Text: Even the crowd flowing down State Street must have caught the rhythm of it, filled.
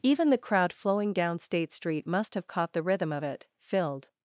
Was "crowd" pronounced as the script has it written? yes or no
yes